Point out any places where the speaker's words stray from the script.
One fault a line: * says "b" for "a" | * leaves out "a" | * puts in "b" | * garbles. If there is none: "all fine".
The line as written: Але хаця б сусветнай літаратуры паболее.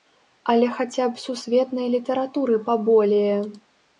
all fine